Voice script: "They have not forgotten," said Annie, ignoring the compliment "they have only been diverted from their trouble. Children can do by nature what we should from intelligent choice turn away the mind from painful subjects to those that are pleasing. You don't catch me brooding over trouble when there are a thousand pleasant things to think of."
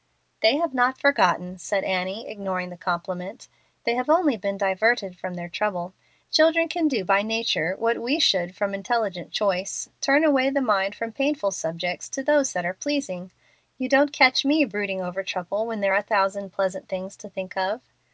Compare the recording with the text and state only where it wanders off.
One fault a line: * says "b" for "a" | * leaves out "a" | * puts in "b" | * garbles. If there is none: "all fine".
all fine